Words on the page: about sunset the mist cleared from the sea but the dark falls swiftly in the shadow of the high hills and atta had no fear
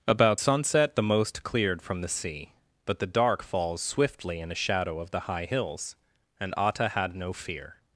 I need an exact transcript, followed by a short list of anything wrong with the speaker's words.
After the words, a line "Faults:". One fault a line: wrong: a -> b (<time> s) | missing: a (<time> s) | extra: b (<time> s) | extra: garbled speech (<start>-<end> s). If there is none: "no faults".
about sunset the most cleared from the sea but the dark falls swiftly in a shadow of the high hills and atta had no fear
Faults:
wrong: mist -> most (1.0 s)
wrong: the -> a (4.5 s)